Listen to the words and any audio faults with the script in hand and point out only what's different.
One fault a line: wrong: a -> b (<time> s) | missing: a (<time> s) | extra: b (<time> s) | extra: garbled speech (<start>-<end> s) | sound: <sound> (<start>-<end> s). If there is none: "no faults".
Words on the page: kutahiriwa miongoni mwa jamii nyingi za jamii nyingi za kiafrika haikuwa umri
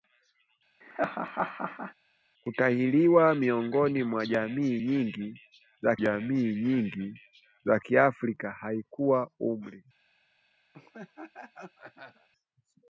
sound: laugh (0.8-1.9 s)
sound: laugh (10.7-12.3 s)